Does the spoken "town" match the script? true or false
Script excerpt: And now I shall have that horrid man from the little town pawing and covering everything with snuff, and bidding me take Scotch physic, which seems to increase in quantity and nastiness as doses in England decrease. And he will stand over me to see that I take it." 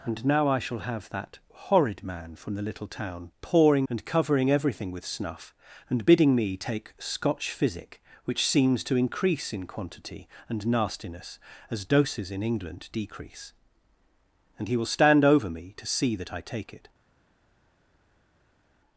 true